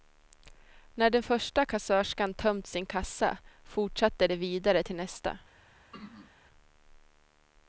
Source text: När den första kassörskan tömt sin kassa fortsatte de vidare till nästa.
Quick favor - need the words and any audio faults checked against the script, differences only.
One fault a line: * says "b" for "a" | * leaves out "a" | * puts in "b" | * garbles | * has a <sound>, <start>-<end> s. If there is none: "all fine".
* has a throat clearing, 5.9-6.3 s